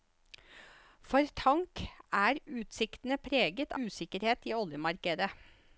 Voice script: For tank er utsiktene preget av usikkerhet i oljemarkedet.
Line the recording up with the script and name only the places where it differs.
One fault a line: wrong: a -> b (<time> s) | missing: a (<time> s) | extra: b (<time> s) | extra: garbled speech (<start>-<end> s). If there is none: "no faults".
missing: av (3.8 s)